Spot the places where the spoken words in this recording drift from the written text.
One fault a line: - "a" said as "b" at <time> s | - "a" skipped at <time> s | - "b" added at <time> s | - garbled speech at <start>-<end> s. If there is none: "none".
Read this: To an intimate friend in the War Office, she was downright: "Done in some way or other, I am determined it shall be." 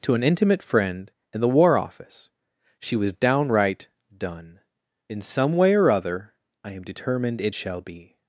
none